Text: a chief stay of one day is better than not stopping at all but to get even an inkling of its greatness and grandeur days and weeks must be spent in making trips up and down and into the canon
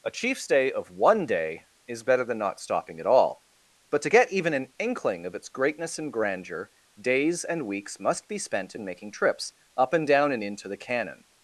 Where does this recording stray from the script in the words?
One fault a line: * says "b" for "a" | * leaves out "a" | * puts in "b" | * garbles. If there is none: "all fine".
all fine